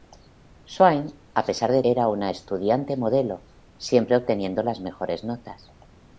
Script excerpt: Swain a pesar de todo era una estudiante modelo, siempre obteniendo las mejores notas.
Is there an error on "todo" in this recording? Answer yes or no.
yes